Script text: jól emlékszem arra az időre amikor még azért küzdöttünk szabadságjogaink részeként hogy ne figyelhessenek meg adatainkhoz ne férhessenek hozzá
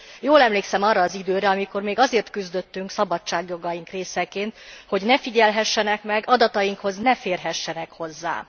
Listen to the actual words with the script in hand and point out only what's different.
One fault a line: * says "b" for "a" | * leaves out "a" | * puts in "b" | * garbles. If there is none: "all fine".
all fine